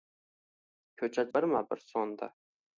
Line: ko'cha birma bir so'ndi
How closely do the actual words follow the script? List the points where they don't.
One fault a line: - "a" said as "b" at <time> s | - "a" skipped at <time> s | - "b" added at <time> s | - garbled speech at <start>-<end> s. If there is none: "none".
none